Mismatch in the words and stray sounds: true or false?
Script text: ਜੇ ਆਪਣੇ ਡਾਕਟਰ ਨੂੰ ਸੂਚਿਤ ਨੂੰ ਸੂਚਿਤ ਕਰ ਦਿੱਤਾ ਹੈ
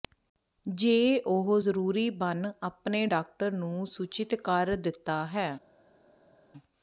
true